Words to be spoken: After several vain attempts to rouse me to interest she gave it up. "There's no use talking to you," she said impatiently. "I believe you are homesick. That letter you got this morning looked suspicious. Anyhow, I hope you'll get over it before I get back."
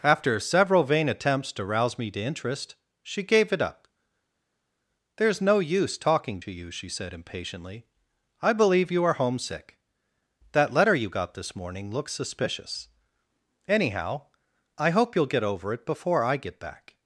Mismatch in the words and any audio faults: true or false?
true